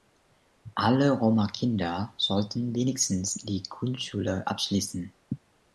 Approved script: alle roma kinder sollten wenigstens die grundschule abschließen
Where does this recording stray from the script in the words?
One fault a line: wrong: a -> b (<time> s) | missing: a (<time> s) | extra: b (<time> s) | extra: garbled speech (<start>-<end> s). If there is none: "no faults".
no faults